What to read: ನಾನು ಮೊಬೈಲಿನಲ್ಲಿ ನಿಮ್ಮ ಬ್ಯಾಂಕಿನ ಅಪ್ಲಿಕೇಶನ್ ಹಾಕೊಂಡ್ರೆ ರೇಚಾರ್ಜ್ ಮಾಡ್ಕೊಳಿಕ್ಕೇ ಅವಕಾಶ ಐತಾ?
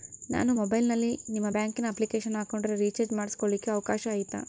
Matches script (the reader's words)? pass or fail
pass